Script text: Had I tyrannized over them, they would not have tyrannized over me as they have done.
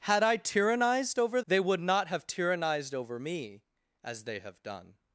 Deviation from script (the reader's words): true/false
true